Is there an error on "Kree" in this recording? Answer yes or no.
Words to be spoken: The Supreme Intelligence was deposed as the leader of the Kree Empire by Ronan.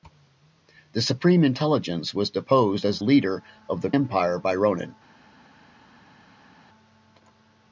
yes